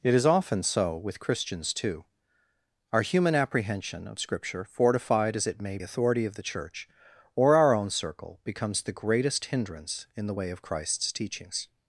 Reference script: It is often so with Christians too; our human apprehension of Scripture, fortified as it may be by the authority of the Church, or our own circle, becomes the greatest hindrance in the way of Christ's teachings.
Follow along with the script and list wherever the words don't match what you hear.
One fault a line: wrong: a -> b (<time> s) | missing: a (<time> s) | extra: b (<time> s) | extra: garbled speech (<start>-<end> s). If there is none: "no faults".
missing: be by the (5.8 s)